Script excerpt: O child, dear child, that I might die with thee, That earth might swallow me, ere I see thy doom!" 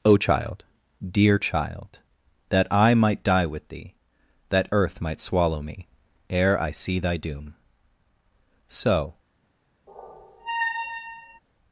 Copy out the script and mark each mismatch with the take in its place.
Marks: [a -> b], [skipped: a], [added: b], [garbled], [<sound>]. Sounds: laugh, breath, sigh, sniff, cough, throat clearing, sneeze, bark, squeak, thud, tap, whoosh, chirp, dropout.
O child, dear child, that I might die with thee, That earth might swallow me, ere I see thy doom!" [added: So] [squeak]